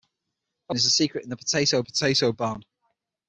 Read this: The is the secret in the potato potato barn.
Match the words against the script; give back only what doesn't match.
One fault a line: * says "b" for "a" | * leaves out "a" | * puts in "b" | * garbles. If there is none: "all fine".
all fine